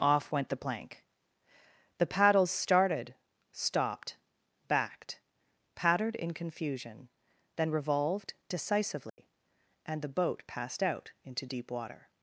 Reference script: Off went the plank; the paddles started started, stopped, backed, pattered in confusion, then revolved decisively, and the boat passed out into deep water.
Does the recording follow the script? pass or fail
fail